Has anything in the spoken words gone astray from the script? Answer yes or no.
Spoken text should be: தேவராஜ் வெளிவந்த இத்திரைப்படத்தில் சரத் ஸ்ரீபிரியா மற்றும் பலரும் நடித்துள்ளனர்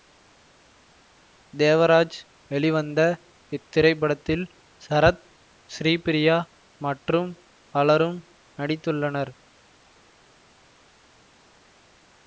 no